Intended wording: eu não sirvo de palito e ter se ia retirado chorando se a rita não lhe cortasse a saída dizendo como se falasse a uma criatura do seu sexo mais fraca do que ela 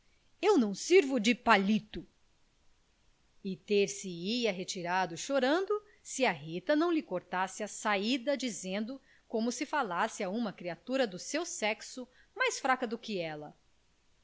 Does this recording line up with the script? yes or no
yes